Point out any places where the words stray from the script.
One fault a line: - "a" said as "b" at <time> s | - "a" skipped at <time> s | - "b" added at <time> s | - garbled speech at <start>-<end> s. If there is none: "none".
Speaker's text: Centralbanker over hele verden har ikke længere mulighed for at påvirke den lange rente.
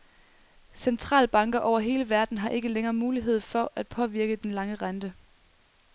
none